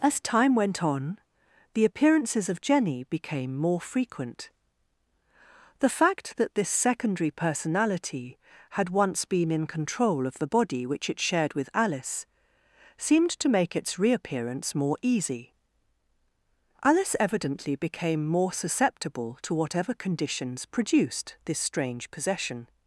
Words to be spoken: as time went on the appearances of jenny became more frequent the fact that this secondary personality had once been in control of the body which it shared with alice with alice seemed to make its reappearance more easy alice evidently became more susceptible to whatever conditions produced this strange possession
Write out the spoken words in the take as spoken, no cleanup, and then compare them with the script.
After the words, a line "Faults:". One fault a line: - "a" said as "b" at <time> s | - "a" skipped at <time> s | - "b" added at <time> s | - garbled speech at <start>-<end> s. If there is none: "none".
as time went on the appearances of jenny became more frequent the fact that this secondary personality had once been in control of the body which it shared with alice seemed to make its reappearance more easy alice evidently became more susceptible to whatever conditions produced this strange possession
Faults:
- "with alice" skipped at 12.3 s